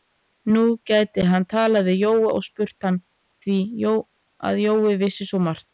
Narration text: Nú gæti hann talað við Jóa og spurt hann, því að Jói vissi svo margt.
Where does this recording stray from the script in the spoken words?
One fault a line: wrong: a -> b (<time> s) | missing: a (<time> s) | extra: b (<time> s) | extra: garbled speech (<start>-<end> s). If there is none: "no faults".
no faults